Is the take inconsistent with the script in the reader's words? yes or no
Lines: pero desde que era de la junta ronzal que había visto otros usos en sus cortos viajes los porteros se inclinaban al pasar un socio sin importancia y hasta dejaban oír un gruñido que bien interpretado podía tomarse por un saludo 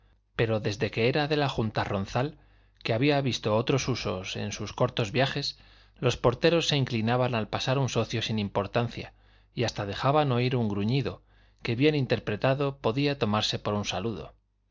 no